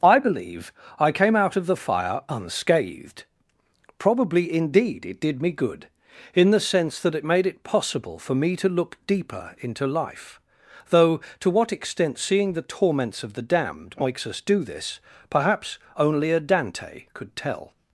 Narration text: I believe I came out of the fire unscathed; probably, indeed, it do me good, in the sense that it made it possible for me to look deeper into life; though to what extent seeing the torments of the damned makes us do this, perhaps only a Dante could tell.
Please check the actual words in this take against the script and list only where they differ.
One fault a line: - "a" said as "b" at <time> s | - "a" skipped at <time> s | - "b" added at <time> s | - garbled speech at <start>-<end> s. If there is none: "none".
- "do" said as "did" at 5.2 s